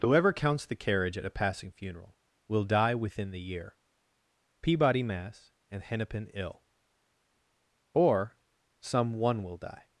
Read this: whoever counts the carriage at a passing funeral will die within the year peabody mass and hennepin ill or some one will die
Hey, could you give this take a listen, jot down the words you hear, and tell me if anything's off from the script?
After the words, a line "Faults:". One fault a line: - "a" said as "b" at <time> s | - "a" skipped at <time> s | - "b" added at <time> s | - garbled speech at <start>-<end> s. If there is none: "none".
whoever counts the carriage at a passing funeral will die within the year peabody mass and hennepin ill or some one will die
Faults:
none